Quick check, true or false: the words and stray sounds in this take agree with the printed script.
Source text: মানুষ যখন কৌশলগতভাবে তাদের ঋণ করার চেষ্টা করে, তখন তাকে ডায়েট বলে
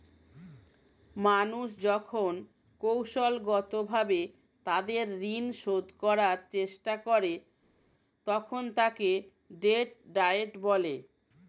false